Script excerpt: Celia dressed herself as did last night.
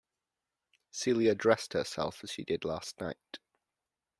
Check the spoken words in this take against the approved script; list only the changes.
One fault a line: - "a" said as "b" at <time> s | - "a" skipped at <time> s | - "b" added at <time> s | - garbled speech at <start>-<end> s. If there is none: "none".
- "she" added at 2.3 s